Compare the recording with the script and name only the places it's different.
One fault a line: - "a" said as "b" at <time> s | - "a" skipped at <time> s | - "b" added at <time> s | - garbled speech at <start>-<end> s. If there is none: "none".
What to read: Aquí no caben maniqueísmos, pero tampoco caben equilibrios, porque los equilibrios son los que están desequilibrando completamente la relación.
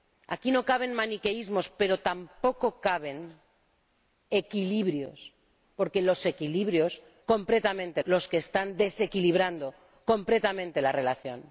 - "son" said as "completamente" at 7.3 s